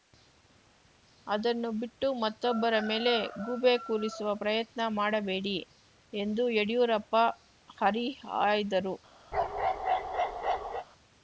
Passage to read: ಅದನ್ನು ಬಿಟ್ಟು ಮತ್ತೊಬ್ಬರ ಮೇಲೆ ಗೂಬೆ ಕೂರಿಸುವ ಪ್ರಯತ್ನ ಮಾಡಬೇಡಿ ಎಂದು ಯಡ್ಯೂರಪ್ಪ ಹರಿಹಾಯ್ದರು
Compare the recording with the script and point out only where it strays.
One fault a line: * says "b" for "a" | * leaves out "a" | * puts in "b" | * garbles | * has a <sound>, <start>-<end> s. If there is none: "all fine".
* has a bark, 9.3-10.9 s